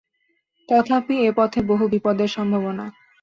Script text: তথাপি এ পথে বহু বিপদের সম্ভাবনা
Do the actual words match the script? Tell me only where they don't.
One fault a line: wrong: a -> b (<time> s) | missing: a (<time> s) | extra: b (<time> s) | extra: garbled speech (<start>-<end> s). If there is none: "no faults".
no faults